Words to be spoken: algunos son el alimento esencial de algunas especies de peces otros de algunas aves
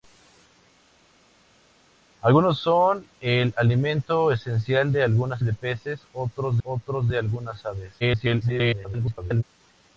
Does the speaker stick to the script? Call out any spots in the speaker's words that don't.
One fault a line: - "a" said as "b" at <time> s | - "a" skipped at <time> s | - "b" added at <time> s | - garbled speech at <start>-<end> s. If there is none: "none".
- "especies" skipped at 5.4 s
- "otros" added at 6.6 s
- garbled speech at 8.0-9.4 s